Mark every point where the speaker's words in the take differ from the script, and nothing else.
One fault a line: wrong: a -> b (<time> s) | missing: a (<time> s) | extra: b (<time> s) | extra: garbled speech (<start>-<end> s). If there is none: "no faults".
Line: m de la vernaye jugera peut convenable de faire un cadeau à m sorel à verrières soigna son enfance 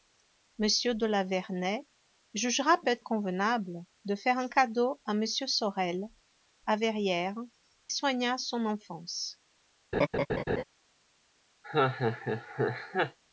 no faults